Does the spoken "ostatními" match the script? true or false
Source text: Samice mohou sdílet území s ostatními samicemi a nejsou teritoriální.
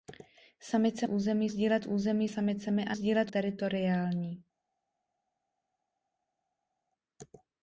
false